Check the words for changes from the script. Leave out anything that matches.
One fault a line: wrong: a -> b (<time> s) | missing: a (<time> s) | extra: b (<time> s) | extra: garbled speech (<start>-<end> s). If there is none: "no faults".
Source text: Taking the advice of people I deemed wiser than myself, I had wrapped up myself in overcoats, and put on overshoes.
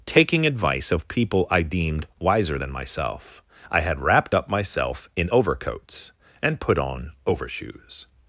missing: the (0.5 s)